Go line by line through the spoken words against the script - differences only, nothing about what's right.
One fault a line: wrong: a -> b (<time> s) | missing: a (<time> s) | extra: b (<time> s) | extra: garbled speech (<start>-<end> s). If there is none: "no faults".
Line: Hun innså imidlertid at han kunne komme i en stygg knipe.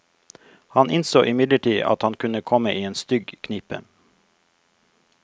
wrong: Hun -> Han (0.7 s)